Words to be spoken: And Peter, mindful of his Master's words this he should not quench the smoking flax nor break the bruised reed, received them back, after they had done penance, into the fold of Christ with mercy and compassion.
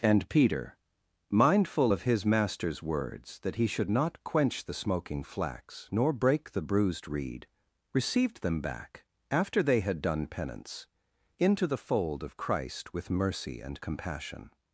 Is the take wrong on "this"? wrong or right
wrong